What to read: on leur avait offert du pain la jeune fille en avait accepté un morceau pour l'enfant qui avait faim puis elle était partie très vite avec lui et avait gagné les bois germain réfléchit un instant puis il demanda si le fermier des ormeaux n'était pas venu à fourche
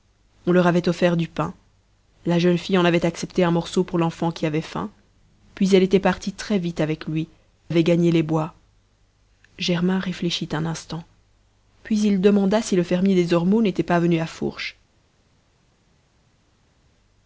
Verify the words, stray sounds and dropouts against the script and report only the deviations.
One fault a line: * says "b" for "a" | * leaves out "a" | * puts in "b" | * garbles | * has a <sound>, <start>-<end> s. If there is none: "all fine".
* leaves out "et"